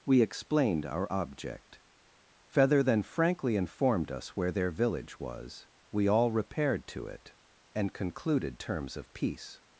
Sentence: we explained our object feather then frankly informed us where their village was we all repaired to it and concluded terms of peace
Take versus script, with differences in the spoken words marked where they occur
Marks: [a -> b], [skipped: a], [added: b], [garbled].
we explained our object feather then frankly informed us where their village was we all repaired to it and concluded terms of peace